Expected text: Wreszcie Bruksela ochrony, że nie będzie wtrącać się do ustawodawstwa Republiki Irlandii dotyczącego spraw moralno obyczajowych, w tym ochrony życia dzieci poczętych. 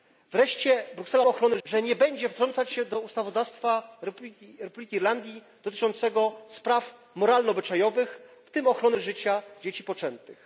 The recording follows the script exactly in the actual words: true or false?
true